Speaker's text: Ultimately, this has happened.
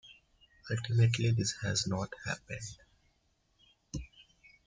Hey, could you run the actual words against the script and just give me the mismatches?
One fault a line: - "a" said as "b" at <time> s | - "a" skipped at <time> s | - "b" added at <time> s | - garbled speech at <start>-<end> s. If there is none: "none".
- "not" added at 1.9 s